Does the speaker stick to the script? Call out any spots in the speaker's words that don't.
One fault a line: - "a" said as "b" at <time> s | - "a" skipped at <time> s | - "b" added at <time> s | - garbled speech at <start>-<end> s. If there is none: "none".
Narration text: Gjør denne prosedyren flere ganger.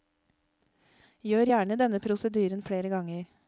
- "gjerne" added at 1.5 s